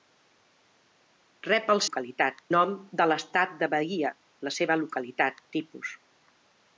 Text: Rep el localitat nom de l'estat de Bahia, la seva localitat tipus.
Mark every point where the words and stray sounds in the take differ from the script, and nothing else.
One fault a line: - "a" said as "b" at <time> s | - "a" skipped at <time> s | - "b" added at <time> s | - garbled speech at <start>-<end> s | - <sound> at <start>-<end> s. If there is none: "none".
none